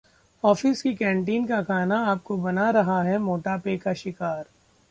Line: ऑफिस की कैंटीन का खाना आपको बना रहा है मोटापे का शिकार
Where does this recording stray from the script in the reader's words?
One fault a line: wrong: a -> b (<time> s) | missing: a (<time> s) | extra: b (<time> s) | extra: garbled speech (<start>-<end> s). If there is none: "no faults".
no faults